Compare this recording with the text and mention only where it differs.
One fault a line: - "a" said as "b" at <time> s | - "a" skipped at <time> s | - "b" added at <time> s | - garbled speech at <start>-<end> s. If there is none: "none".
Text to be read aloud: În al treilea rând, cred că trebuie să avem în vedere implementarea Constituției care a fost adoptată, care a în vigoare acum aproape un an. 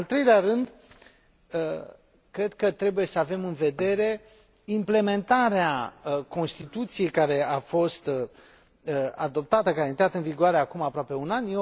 - "intrat" added at 9.9 s